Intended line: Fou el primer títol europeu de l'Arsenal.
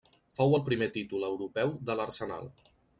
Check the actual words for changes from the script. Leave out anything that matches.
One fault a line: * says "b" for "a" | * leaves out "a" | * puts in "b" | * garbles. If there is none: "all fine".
all fine